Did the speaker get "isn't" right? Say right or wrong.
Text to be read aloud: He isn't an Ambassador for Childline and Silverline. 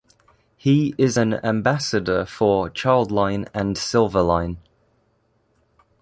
wrong